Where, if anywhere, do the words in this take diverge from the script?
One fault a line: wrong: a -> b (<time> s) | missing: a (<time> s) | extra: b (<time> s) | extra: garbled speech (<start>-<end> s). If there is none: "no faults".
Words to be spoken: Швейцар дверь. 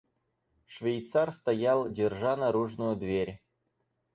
extra: стоял держа наружную (1.3 s)